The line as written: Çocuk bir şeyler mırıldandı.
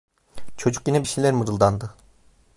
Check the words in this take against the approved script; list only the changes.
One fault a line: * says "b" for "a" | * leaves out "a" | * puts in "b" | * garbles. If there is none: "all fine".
* puts in "yine"